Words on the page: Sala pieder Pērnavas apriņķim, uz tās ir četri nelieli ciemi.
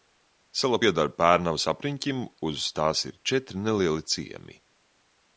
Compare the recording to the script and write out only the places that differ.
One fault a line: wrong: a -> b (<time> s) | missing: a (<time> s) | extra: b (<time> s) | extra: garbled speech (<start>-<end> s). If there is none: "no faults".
no faults